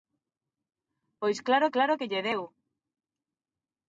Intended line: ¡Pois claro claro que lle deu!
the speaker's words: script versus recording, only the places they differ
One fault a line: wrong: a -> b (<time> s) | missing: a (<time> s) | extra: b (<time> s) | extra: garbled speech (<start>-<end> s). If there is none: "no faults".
no faults